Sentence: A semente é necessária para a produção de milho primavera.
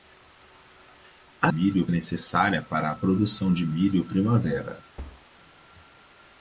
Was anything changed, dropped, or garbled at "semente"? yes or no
yes